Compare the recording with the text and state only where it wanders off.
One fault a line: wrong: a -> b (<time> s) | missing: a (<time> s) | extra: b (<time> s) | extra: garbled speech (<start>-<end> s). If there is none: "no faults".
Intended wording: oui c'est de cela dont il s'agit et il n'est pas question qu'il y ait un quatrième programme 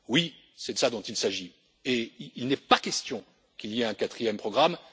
no faults